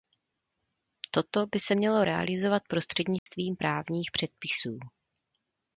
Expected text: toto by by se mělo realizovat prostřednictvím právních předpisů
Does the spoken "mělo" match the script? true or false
true